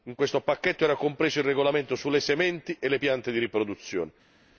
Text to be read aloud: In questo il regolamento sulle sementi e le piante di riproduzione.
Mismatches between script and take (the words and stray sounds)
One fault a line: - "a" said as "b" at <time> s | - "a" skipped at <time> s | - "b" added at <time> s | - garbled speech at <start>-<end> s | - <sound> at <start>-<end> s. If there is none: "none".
- "pacchetto era compreso" added at 0.4 s